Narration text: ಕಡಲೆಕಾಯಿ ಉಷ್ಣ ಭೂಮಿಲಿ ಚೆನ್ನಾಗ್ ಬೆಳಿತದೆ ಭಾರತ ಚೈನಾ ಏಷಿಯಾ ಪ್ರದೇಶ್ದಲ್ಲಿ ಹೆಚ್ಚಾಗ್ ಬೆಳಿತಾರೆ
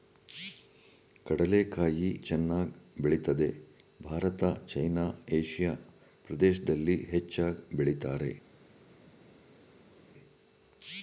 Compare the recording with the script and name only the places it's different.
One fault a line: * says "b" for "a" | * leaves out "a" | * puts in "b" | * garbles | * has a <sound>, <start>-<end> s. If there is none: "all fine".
* leaves out "ಉಷ್ಣ ಭೂಮಿಲಿ"